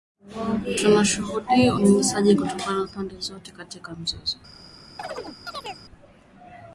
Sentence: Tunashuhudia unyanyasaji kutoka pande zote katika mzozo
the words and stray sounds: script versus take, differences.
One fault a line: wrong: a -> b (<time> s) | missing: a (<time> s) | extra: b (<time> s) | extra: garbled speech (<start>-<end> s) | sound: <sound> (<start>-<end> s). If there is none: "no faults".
sound: chirp (5.0-5.9 s)